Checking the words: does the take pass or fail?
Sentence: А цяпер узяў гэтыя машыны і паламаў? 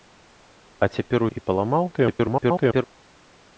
fail